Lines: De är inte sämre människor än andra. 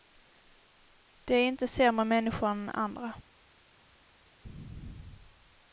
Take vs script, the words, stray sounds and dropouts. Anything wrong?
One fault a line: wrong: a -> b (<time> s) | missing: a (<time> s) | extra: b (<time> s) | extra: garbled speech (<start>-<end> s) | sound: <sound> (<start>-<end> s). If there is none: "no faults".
no faults